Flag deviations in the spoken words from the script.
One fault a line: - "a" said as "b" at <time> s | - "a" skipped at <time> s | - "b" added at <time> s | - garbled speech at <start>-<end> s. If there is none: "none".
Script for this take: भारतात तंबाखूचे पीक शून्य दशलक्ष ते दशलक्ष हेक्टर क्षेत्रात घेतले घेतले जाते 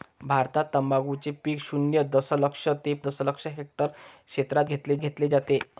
none